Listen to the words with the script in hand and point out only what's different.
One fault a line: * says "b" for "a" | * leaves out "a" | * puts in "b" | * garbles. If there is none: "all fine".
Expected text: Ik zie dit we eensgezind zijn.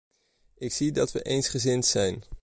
* says "dat" for "dit"